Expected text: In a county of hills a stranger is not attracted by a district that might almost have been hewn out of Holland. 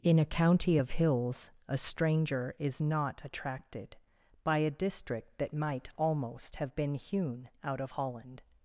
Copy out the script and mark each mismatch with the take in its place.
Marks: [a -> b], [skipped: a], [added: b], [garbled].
In a county of hills a stranger is not attracted by a district that might almost have been hewn out of Holland.